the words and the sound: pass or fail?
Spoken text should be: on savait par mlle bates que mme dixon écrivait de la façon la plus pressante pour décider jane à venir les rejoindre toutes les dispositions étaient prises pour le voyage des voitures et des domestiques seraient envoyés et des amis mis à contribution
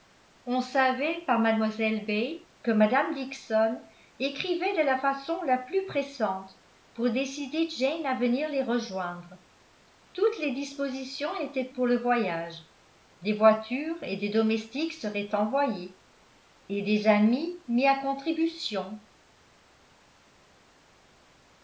fail